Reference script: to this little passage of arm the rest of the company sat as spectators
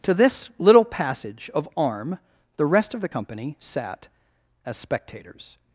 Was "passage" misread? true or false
false